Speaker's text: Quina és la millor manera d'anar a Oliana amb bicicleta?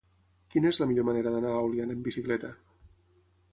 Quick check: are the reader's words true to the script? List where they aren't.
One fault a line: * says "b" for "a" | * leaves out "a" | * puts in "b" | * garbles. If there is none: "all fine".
all fine